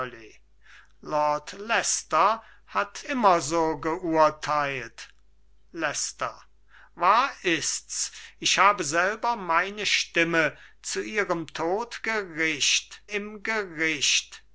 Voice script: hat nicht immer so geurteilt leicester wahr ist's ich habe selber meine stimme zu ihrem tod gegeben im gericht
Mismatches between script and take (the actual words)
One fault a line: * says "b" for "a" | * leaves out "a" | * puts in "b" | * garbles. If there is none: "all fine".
* leaves out "nicht"
* says "gericht" for "gegeben"